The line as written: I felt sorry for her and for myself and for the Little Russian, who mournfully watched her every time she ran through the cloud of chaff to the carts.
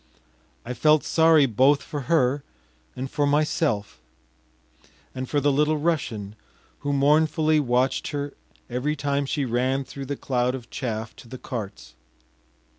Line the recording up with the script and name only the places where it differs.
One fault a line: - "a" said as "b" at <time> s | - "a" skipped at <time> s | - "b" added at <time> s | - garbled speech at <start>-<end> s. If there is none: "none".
- "both" added at 1.4 s